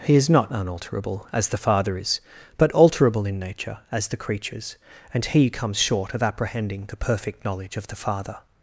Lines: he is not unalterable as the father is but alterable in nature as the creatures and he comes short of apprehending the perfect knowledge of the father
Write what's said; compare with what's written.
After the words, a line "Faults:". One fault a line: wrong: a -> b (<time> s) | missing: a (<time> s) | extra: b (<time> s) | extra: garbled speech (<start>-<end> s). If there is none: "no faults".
he is not unalterable as the father is but alterable in nature as the creatures and he comes short of apprehending the perfect knowledge of the father
Faults:
no faults